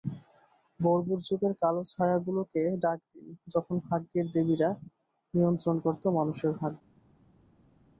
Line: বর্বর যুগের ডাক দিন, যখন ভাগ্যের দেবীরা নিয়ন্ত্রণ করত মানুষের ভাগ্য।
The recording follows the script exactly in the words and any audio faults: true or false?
false